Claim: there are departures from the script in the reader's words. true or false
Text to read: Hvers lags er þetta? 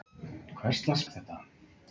false